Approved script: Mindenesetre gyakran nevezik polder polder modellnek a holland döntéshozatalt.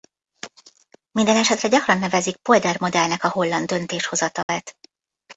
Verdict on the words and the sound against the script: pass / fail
fail